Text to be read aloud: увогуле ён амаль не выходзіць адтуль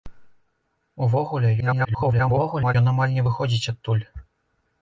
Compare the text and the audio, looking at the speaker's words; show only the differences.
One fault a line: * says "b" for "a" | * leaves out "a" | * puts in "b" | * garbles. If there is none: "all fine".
* garbles